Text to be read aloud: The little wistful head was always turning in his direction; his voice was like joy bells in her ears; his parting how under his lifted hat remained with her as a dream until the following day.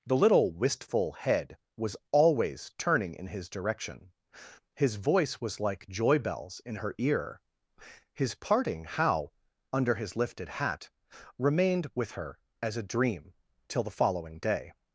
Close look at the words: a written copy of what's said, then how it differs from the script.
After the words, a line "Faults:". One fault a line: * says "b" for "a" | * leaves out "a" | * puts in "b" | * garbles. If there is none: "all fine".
The little wistful head was always turning in his direction; his voice was like joy bells in her ear; his parting how under his lifted hat remained with her as a dream till the following day.
Faults:
* says "ear" for "ears"
* says "till" for "until"